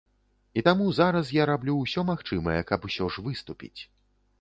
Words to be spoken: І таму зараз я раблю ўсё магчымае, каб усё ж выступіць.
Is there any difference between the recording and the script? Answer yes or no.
no